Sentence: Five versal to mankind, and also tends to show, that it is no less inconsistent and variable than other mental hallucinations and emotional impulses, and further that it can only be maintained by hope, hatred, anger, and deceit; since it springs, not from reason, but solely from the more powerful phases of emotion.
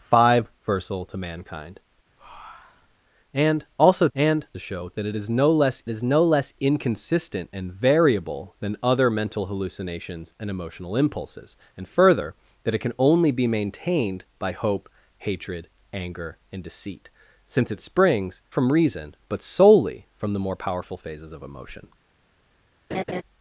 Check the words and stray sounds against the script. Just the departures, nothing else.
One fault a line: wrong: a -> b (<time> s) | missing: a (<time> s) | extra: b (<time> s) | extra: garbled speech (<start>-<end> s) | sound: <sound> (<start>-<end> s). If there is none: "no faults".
sound: breath (2.2-3.0 s)
wrong: tends -> and (4.1 s)
extra: is no less (5.9 s)
missing: not (18.4 s)
sound: laugh (22.9-23.2 s)